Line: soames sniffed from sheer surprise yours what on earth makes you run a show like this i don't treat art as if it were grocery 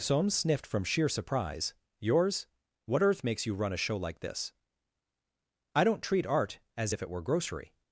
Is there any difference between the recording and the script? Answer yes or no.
yes